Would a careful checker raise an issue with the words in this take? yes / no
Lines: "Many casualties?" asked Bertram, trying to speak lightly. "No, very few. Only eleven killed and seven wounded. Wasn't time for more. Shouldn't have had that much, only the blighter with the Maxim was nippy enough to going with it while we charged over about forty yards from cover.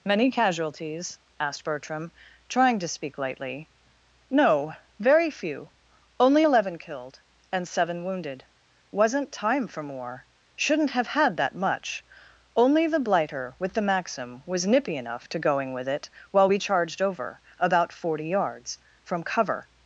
no